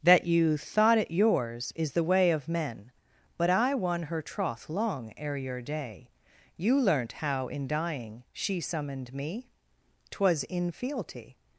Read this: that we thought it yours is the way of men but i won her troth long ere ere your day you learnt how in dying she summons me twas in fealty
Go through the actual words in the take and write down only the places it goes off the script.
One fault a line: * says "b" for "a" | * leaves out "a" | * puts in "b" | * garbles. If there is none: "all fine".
* says "you" for "we"
* leaves out "ere"
* says "summoned" for "summons"